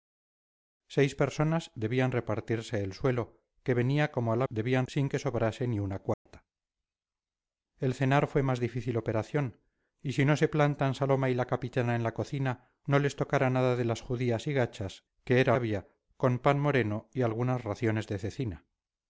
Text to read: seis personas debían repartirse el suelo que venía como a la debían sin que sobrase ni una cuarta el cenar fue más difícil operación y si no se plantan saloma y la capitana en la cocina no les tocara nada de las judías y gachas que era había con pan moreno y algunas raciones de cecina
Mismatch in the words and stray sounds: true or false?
true